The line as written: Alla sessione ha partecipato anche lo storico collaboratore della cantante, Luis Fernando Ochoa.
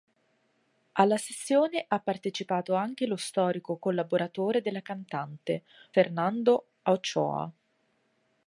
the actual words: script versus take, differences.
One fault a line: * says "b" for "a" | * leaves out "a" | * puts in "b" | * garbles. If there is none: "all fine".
* leaves out "Luis"